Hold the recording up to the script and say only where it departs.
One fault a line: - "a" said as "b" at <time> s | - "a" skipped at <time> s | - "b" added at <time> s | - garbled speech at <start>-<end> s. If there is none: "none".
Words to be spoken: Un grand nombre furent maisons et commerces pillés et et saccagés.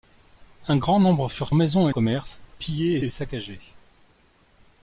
none